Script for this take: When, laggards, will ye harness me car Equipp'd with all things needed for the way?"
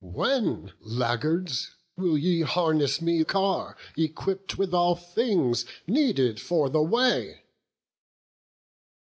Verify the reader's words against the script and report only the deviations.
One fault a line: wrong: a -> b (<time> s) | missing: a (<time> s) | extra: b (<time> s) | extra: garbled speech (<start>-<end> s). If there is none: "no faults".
no faults